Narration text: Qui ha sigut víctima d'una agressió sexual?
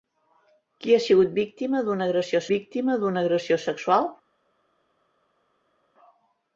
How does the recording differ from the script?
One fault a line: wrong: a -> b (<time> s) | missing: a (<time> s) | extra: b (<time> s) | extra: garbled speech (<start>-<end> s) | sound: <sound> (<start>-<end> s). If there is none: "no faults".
extra: víctima d'una agressió (2.5 s)